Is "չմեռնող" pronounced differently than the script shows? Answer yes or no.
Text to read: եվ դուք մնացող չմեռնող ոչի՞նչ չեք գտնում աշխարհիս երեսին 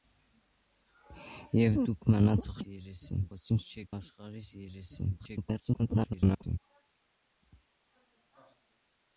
yes